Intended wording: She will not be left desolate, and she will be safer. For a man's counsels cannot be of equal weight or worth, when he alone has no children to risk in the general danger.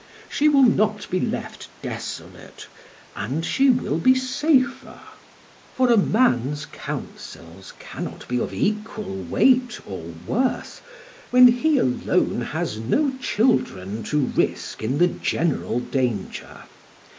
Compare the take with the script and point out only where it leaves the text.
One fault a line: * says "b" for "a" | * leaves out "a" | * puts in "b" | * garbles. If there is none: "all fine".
all fine